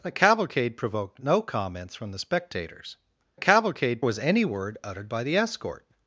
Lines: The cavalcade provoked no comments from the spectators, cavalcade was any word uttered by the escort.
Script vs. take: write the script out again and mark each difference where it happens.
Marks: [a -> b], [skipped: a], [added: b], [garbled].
The cavalcade provoked no comments from the spectators, cavalcade was any word uttered by the escort.